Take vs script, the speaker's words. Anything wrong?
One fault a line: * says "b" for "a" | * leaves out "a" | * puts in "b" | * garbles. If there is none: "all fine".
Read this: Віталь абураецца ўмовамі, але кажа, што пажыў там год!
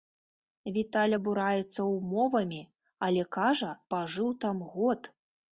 * leaves out "што"